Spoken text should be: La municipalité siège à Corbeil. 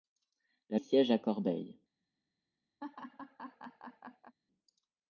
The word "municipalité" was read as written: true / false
false